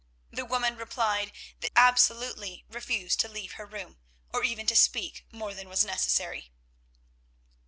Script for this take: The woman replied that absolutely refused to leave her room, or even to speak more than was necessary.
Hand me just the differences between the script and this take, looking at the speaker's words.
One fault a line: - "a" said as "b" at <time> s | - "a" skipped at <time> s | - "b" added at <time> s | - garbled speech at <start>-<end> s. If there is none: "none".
none